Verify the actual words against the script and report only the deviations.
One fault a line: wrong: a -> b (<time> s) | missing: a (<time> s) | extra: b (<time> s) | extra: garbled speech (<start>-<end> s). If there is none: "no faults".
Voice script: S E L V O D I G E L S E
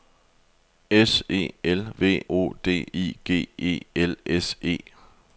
no faults